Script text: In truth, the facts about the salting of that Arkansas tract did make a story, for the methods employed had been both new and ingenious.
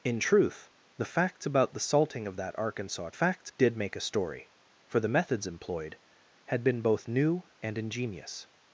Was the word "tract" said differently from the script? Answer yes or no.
yes